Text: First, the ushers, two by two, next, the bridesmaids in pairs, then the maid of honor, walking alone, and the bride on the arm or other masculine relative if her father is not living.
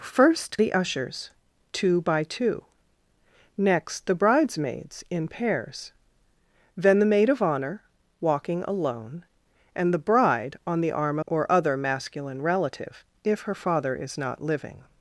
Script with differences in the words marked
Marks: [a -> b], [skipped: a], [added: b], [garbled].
First, the ushers, two by two, next, the bridesmaids in pairs, then the maid of honor, walking alone, and the bride on the arm or other masculine relative if her father is not living.